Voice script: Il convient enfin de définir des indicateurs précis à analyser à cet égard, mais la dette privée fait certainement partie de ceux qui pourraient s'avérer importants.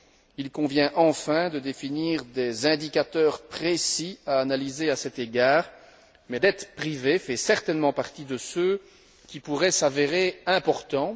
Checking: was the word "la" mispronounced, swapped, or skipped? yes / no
yes